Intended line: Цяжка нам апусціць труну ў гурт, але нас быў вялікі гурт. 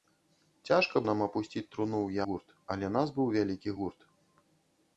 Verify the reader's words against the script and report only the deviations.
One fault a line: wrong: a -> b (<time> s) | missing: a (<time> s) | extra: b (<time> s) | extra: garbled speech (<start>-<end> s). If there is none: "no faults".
no faults